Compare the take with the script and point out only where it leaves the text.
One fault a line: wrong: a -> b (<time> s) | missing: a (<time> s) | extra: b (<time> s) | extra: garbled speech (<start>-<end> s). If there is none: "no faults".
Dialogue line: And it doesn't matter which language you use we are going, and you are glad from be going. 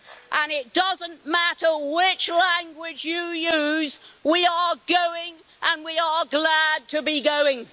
wrong: you -> we (5.8 s)
wrong: from -> to (6.9 s)